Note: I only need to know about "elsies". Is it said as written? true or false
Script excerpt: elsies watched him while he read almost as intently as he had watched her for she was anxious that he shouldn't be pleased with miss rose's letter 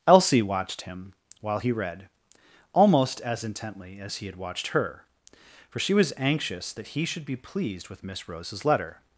false